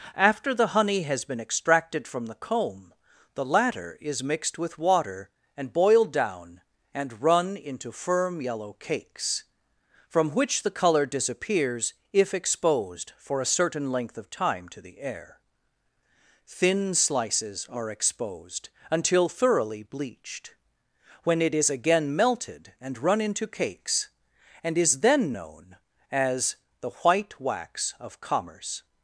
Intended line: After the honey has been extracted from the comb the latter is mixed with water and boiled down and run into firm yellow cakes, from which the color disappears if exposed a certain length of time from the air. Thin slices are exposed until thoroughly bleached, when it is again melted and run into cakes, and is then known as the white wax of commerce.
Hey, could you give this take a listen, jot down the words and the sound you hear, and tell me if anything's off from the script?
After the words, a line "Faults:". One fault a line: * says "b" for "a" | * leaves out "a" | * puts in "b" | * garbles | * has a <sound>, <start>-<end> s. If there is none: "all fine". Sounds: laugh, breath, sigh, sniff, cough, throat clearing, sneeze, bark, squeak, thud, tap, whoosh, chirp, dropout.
After the honey has been extracted from the comb the latter is mixed with water and boiled down and run into firm yellow cakes, from which the color disappears if exposed for a certain length of time to the air. Thin slices are exposed until thoroughly bleached, when it is again melted and run into cakes, and is then known as the white wax of commerce.
Faults:
* puts in "for"
* says "to" for "from"